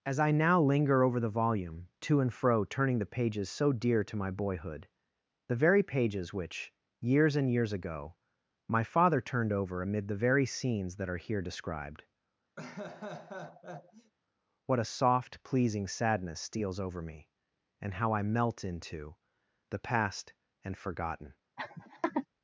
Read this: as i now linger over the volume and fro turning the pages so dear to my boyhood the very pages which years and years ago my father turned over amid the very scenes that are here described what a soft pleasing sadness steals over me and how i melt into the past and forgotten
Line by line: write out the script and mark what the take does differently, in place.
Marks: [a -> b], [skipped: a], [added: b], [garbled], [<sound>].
as i now linger over the volume [added: to] and fro turning the pages so dear to my boyhood the very pages which years and years ago my father turned over amid the very scenes that are here described [laugh] what a soft pleasing sadness steals over me and how i melt into the past and forgotten [laugh]